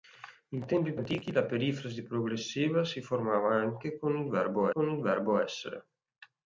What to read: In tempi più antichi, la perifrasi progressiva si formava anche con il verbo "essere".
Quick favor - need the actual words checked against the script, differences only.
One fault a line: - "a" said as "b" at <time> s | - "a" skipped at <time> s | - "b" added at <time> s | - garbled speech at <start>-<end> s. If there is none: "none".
- "più" skipped at 0.9 s
- "con il verbo" added at 4.7 s